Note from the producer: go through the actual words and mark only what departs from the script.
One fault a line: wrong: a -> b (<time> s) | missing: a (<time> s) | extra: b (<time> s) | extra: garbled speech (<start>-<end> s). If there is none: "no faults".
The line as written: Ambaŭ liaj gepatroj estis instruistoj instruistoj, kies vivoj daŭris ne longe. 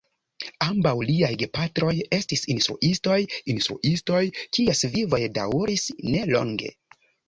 no faults